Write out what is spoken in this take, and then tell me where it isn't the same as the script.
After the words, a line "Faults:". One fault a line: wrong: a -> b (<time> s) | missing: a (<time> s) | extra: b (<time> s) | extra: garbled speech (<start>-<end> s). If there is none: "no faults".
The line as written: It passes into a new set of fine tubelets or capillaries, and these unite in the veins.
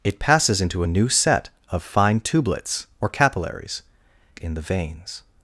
It passes into a new set of fine tubelets or capillaries, in the veins.
Faults:
missing: and these unite (3.8 s)